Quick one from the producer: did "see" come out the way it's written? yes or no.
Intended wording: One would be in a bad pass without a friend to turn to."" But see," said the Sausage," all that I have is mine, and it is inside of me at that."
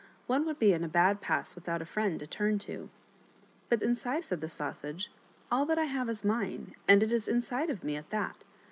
no